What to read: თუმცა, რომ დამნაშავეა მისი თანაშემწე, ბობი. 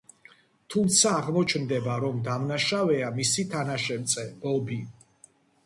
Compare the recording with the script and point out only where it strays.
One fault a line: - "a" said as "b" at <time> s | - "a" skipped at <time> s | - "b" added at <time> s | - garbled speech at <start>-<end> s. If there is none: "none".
- "აღმოჩნდება" added at 1.1 s